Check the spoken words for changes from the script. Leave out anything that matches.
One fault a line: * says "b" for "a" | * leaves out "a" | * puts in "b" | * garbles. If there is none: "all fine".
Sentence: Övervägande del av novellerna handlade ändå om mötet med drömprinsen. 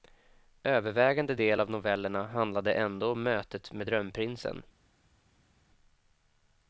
all fine